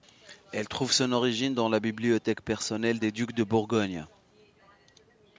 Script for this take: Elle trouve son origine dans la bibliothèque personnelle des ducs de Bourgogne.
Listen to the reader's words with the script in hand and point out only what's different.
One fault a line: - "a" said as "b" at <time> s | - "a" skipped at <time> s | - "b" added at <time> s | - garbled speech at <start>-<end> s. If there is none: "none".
none